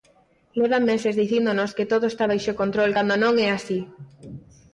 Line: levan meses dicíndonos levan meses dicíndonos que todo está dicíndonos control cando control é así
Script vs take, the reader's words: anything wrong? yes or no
yes